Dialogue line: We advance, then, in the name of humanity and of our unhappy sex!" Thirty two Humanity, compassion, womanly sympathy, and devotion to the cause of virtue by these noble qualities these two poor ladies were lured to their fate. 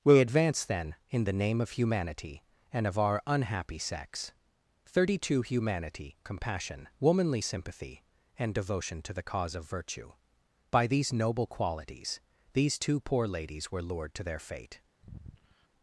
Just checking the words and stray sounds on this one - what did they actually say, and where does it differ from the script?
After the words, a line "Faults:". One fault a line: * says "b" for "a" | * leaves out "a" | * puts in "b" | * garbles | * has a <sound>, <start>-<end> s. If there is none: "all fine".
We advance, then, in the name of humanity and of our unhappy sex!" Thirty two Humanity, compassion, womanly sympathy, and devotion to the cause of virtue by these noble qualities these two poor ladies were lured to their fate.
Faults:
* has a sigh, 15.0-15.7 s